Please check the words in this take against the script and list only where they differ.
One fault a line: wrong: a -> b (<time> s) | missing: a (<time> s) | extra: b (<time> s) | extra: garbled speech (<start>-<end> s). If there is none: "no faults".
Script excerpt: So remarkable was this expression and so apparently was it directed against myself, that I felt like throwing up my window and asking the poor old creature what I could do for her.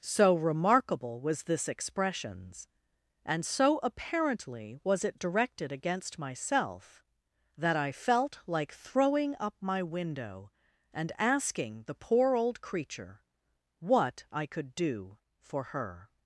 wrong: expression -> expressions (1.7 s)